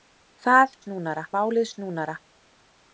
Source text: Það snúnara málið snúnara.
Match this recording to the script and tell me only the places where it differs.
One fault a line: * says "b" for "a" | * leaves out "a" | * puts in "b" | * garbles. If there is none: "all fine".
all fine